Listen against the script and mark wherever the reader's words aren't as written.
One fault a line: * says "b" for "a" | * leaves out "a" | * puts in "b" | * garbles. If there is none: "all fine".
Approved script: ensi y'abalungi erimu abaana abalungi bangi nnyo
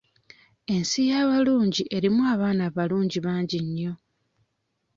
all fine